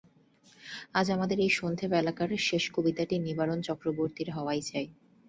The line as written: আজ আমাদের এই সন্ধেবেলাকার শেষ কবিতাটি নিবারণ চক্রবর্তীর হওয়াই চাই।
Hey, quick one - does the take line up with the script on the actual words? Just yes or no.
yes